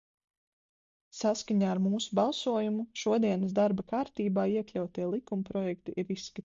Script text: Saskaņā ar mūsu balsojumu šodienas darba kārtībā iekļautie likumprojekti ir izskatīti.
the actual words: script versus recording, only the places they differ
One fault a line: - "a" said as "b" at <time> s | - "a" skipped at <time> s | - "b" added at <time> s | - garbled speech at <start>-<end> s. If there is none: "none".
none